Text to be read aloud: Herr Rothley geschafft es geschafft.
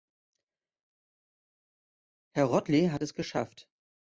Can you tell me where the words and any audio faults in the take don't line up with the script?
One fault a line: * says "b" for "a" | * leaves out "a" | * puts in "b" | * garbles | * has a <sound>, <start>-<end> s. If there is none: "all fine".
* says "hat" for "geschafft"